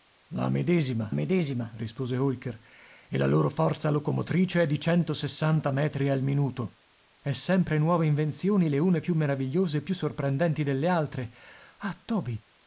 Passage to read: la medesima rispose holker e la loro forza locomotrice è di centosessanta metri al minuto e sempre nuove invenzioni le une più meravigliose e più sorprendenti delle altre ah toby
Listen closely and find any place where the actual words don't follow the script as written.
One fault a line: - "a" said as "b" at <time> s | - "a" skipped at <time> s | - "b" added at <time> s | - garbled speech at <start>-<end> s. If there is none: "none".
- "medesima" added at 1.1 s